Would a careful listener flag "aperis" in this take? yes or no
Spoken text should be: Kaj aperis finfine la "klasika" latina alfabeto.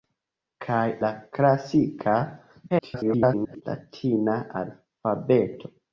yes